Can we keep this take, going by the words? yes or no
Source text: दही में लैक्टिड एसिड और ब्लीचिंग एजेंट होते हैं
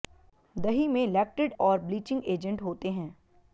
no